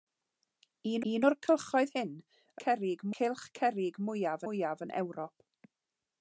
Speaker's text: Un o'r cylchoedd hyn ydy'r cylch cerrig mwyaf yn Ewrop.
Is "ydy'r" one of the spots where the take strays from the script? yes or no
yes